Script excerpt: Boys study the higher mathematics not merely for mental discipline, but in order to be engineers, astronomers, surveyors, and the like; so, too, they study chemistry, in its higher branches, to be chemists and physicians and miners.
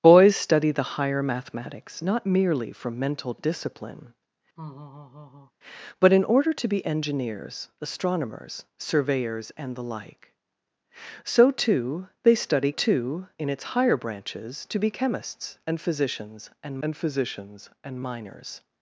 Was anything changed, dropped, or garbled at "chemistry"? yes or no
yes